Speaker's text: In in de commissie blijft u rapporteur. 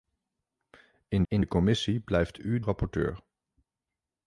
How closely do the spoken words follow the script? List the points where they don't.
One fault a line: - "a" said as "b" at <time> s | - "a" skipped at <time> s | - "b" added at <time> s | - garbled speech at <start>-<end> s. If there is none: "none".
none